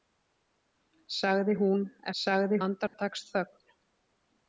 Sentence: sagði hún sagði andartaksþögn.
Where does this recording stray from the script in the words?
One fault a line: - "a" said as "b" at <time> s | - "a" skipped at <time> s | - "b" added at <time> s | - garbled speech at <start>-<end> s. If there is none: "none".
none